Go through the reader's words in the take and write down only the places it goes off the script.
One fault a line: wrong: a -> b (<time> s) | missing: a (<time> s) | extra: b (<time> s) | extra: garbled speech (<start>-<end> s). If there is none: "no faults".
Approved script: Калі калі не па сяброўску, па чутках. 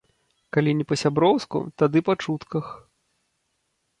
missing: калі (0.7 s)
extra: тады (1.8 s)